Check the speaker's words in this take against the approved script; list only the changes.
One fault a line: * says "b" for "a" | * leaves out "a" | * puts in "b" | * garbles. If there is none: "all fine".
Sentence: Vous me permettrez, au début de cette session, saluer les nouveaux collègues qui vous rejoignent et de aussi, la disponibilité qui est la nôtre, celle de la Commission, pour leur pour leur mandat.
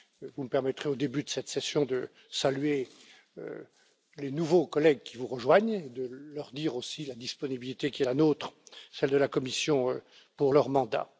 * puts in "de"
* puts in "leur dire"
* leaves out "pour leur"